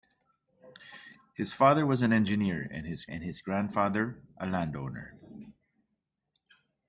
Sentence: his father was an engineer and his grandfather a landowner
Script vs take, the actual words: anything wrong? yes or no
yes